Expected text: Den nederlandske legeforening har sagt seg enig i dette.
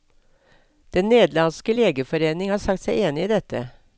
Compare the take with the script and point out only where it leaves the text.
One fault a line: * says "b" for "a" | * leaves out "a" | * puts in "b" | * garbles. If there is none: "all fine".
all fine